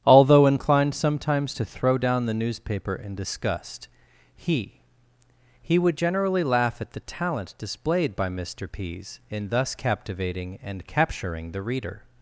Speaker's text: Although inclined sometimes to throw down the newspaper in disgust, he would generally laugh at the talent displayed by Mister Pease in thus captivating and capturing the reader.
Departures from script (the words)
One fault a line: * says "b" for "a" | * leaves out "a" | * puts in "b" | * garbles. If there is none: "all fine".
* puts in "he"